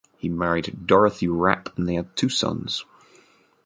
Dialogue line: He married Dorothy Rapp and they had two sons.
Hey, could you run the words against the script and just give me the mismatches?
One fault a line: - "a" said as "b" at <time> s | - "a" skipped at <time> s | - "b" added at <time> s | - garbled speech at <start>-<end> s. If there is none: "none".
none